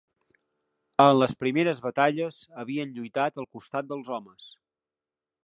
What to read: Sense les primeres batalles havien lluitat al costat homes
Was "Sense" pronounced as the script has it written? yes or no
no